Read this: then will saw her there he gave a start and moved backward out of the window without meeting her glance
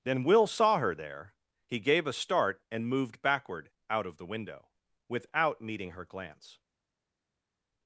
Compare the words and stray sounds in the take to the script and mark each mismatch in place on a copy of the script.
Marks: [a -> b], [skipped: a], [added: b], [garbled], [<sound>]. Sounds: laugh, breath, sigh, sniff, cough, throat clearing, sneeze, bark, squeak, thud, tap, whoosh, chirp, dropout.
then will saw her there he gave a start and moved backward out of the window without meeting her glance